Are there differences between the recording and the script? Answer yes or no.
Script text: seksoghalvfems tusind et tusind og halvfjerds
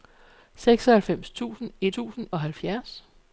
no